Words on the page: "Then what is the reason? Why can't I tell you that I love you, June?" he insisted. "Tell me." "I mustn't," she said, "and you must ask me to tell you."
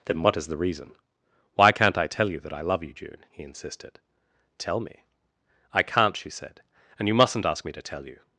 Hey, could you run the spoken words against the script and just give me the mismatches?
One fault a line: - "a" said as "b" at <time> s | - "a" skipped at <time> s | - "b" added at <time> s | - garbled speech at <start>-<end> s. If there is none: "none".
- "mustn't" said as "can't" at 5.8 s
- "must" said as "mustn't" at 7.1 s